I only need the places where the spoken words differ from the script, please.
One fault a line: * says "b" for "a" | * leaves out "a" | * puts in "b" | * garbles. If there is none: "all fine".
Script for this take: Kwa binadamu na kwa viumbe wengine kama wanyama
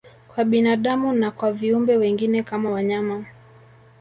all fine